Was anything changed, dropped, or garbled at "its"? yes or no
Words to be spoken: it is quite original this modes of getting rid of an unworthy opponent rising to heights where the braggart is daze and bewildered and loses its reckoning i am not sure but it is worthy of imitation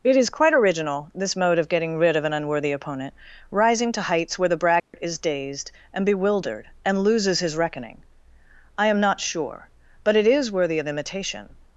yes